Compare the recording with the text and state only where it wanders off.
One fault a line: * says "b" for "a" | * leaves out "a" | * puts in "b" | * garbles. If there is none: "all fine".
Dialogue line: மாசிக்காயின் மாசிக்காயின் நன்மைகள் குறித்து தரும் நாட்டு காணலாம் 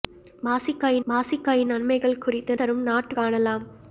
all fine